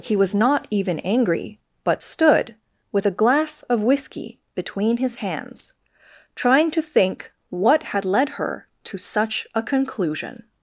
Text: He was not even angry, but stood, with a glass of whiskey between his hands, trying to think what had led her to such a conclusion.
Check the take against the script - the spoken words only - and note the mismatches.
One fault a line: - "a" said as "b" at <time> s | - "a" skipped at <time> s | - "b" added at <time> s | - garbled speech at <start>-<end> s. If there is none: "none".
none